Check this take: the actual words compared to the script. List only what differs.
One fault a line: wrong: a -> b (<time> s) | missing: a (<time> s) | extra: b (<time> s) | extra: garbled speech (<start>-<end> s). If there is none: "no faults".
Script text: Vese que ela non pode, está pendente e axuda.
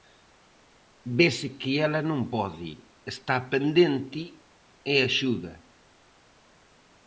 no faults